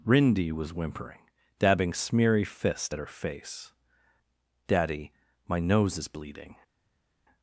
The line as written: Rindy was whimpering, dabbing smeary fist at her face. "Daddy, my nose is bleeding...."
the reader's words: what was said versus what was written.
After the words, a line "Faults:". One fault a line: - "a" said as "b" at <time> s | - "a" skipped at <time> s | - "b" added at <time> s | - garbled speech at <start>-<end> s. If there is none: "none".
Rindy was whimpering, dabbing smeary fist at her face. "Daddy, my nose is bleeding...."
Faults:
none